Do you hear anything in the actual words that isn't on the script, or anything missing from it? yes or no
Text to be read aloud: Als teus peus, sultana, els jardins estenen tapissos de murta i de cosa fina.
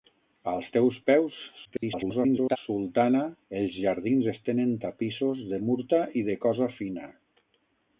yes